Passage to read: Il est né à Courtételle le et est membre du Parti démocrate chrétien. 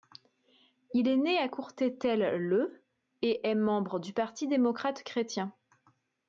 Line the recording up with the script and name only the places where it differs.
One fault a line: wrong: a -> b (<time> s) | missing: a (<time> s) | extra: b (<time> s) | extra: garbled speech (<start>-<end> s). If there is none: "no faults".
no faults